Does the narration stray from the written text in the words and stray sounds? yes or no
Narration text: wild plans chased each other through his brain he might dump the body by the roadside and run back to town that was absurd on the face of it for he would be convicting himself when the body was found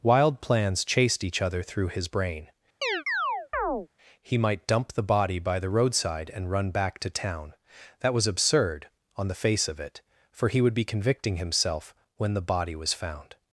yes